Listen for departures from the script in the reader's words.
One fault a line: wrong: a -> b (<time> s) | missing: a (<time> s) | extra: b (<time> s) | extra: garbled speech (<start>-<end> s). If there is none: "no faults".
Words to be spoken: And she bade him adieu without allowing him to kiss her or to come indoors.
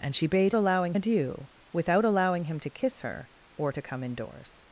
wrong: him -> allowing (0.6 s)